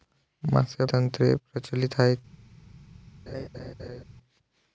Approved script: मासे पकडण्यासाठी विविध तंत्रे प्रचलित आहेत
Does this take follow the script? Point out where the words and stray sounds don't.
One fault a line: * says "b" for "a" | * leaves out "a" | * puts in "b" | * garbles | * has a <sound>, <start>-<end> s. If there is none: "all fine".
* leaves out "पकडण्यासाठी विविध"
* has a laugh, 3.3-4.0 s